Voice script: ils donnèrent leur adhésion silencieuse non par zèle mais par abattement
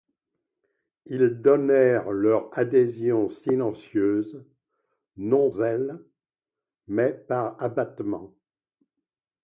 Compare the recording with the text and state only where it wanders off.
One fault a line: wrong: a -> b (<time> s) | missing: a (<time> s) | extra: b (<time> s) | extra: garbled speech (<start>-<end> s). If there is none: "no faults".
missing: par (5.5 s)